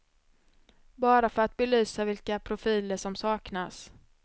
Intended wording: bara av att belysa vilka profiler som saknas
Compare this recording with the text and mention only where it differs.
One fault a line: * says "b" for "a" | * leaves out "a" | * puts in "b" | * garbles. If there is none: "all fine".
* says "för" for "av"